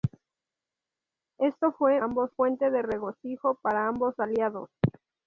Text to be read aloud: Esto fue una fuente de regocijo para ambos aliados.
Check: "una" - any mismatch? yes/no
yes